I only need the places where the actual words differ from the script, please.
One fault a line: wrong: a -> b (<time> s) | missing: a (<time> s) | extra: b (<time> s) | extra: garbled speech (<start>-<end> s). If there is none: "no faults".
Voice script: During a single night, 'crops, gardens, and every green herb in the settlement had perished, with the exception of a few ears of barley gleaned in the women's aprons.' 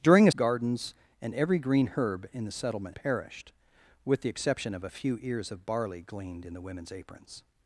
missing: single night crops (0.3 s)
missing: had (2.9 s)